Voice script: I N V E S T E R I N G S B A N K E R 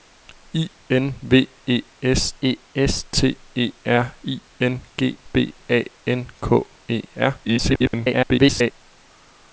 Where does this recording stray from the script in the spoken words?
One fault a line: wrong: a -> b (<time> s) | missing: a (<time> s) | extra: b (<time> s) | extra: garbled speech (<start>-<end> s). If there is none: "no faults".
extra: E S (2.4 s)
missing: S (5.2 s)
extra: garbled speech (7.4-8.7 s)